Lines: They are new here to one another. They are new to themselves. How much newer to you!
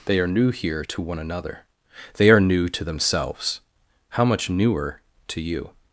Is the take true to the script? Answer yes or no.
yes